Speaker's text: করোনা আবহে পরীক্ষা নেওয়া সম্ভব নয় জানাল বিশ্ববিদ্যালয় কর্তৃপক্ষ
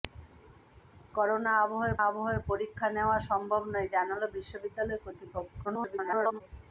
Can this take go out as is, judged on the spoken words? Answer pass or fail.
fail